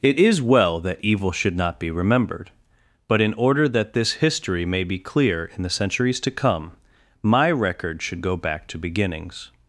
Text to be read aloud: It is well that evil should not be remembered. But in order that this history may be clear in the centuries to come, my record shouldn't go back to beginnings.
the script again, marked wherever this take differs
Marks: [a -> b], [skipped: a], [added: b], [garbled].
It is well that evil should not be remembered. But in order that this history may be clear in the centuries to come, my record [shouldn't -> should] go back to beginnings.